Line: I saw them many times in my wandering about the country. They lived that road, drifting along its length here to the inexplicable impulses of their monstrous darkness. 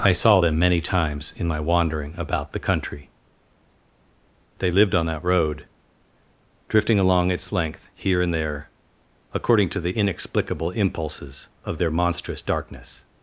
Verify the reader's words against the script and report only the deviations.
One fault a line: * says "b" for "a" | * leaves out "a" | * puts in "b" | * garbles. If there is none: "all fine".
* puts in "on"
* puts in "and there according"